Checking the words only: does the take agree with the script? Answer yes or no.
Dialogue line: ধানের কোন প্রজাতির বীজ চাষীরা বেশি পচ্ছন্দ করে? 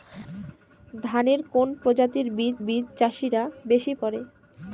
no